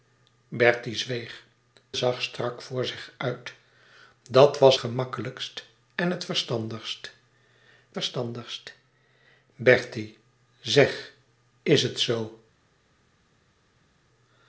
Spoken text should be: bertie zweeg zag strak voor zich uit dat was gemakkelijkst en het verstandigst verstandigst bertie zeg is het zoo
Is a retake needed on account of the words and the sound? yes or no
no